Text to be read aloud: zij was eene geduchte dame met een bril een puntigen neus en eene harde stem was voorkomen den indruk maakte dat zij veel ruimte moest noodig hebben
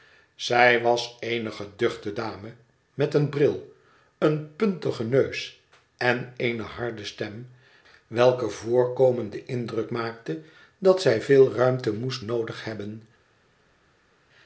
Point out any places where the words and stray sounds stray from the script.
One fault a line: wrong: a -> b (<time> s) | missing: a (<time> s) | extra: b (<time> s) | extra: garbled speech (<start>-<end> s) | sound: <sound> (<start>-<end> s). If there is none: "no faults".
wrong: was -> welker (8.1 s)